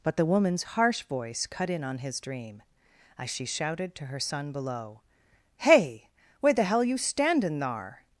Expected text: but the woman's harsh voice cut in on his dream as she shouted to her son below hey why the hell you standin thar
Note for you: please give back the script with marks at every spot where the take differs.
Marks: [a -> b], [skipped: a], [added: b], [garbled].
but the woman's harsh voice cut in on his dream as she shouted to her son below hey [why -> where] the hell you standin thar